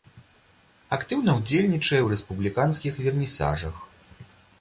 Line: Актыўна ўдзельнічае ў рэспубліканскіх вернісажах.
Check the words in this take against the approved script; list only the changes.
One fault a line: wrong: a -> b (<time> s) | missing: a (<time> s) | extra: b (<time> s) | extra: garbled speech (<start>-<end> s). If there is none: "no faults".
no faults